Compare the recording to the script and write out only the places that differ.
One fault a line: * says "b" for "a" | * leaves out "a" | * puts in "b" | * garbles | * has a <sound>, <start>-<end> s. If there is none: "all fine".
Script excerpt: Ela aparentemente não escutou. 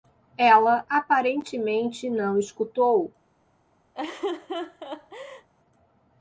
* has a laugh, 3.9-5.5 s